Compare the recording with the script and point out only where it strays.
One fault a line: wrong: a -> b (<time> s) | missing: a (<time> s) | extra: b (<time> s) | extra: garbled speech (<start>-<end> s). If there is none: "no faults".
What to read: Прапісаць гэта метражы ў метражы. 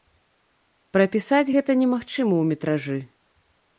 wrong: метражы -> немагчыма (1.8 s)